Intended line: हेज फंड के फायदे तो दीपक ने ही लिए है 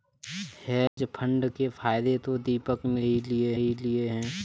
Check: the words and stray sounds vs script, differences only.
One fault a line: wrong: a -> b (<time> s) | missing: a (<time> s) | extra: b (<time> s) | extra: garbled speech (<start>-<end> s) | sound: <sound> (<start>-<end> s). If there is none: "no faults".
sound: dropout (0.9-1.0 s)
extra: ही लिए (3.5 s)